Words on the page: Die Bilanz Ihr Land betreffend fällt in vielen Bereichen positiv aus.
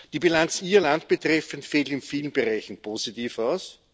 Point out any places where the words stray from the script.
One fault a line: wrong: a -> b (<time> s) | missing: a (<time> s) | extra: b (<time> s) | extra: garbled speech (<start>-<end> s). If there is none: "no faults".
no faults